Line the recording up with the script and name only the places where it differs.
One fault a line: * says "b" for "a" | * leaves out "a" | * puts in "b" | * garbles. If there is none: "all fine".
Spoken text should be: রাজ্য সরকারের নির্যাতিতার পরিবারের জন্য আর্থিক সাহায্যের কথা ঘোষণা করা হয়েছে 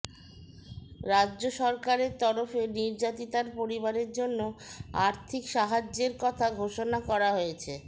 * puts in "তরফে"